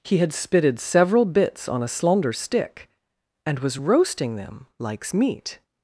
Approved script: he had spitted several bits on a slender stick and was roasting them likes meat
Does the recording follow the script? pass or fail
pass